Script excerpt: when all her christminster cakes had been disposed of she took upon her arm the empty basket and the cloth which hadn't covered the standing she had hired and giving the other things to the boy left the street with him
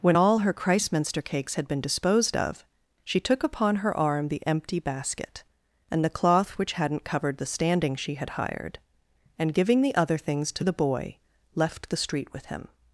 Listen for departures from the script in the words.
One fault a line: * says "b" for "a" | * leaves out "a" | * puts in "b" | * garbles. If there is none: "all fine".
all fine